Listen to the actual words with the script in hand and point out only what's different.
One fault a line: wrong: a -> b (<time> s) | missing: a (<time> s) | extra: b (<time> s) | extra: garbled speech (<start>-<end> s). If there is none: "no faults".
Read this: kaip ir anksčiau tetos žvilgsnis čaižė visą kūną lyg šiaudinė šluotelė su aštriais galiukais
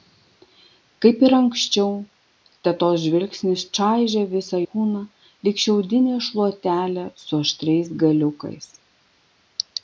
no faults